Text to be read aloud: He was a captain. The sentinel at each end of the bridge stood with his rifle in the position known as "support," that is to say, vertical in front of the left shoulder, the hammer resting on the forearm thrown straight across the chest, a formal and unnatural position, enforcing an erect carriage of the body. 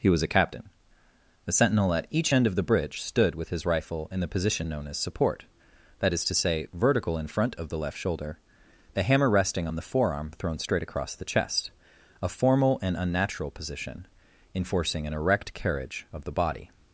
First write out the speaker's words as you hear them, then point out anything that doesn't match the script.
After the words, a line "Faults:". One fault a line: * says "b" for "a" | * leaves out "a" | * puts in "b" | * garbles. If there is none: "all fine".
He was a captain. The sentinel at each end of the bridge stood with his rifle in the position known as "support," that is to say, vertical in front of the left shoulder, the hammer resting on the forearm thrown straight across the chest, a formal and unnatural position, enforcing an erect carriage of the body.
Faults:
all fine